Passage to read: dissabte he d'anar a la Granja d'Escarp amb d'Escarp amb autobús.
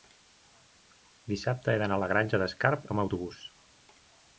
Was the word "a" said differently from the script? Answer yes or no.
no